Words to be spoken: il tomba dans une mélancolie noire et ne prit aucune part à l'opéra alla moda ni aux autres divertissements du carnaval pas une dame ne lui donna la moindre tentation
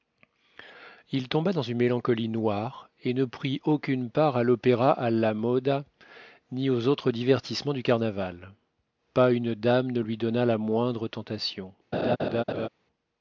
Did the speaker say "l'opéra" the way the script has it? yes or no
yes